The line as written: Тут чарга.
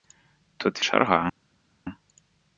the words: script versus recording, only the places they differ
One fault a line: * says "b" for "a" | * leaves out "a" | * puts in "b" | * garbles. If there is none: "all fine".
all fine